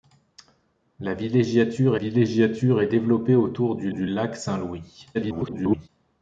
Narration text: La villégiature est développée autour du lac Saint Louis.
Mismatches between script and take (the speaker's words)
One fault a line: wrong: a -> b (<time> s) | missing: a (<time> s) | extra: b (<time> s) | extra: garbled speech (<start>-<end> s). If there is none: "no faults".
extra: villégiature (1.9 s)
extra: du (3.9 s)
extra: garbled speech (5.1-5.9 s)